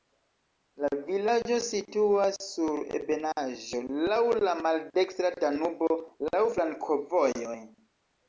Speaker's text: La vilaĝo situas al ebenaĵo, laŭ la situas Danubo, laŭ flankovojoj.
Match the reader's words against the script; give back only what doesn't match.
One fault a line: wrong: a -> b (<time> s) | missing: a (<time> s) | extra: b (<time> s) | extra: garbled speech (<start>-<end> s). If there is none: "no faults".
wrong: al -> sur (2.5 s)
wrong: situas -> maldekstra (4.7 s)